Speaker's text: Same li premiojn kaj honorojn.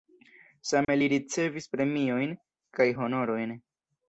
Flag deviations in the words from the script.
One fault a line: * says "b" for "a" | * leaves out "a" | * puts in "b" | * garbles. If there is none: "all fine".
* puts in "ricevis"